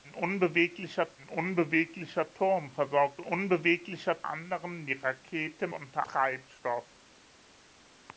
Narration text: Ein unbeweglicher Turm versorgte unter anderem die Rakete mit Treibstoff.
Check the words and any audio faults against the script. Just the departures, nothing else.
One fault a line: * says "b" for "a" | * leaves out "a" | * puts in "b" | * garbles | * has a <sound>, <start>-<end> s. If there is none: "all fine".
* puts in "ein unbeweglicher"
* says "unbeweglicher" for "unter"
* says "unter" for "mit"